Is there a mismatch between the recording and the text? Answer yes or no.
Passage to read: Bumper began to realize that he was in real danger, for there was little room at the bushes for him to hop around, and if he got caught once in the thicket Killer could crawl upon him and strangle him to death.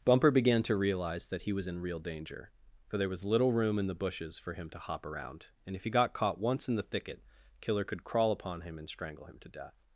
yes